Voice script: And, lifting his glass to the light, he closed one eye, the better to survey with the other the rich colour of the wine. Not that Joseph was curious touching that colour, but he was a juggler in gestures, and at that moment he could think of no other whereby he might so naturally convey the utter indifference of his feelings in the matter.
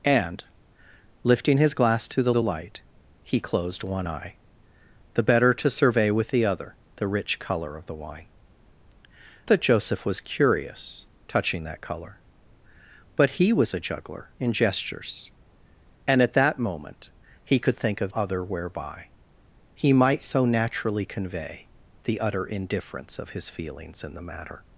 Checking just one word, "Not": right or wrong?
wrong